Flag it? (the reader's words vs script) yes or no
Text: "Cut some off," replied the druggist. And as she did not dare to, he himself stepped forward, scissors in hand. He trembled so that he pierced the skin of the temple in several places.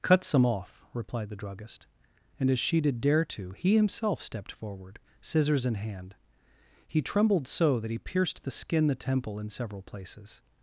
yes